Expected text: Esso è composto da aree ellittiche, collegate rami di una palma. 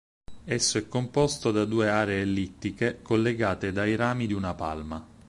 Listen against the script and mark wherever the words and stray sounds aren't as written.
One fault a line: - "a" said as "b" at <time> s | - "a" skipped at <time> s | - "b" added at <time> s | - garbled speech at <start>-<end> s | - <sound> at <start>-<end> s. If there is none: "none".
- "due" added at 1.6 s
- "dai" added at 3.7 s